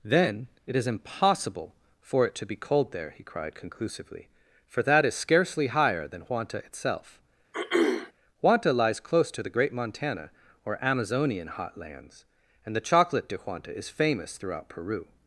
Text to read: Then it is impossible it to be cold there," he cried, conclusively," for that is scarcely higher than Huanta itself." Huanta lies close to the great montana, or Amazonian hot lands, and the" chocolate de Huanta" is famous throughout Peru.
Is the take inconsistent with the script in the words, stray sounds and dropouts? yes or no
yes